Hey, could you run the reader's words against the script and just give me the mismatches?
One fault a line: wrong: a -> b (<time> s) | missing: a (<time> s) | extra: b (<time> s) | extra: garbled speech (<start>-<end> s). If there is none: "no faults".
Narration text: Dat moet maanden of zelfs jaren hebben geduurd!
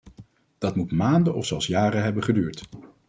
no faults